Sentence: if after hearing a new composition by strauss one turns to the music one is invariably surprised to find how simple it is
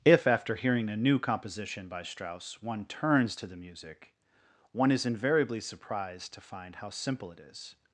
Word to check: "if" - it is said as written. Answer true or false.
true